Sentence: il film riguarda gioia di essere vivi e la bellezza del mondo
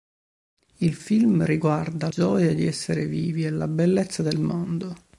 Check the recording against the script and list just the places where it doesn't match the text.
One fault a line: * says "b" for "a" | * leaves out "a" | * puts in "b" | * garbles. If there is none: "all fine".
all fine